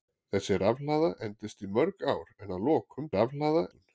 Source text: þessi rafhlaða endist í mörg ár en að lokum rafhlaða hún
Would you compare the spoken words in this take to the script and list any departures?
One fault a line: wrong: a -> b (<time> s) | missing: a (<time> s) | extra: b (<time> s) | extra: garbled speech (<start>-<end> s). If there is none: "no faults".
no faults